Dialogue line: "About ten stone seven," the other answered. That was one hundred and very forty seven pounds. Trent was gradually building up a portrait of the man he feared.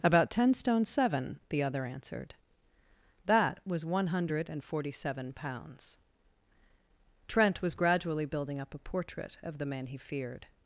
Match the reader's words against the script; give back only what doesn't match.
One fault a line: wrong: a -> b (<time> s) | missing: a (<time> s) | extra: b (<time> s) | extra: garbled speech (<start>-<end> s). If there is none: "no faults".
missing: very (4.6 s)